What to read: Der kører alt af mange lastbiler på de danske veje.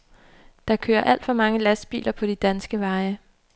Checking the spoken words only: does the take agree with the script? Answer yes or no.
no